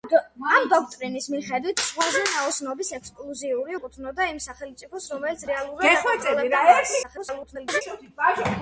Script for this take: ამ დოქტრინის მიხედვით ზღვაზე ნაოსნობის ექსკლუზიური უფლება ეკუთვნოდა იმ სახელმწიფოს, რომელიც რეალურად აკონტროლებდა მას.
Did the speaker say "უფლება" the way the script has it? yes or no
no